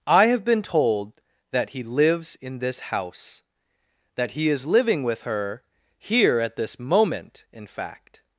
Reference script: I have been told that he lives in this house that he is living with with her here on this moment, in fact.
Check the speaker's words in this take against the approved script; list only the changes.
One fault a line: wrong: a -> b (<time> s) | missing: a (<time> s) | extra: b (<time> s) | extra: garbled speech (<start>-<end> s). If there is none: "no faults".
missing: with (5.2 s)
wrong: on -> at (6.4 s)